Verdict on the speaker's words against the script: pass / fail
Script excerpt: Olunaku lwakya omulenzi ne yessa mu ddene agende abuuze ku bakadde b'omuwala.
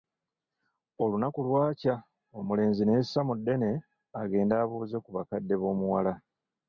pass